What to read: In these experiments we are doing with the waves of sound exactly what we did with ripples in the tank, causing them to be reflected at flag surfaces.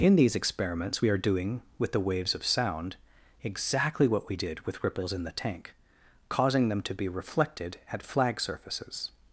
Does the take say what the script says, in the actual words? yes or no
yes